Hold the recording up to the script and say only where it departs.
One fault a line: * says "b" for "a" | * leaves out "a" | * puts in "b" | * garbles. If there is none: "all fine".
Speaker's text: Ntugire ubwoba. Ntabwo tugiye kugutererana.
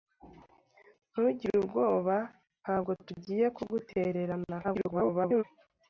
* garbles